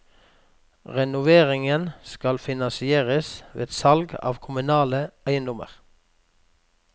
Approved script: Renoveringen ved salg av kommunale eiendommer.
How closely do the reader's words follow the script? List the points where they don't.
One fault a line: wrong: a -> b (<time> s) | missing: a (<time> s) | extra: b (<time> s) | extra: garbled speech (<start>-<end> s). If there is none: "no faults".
extra: skal finansieres (2.1 s)